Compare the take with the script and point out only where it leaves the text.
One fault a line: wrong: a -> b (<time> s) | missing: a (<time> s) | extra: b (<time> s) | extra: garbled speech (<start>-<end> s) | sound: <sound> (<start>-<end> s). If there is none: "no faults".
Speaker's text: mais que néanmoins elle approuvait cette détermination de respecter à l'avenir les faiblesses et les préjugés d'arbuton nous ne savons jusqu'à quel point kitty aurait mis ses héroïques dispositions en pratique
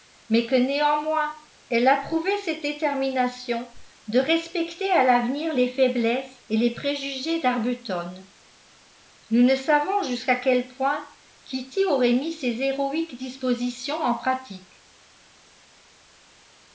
no faults